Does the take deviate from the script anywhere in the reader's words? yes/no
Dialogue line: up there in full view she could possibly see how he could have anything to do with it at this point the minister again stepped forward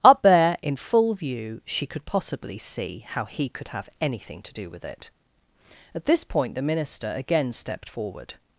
no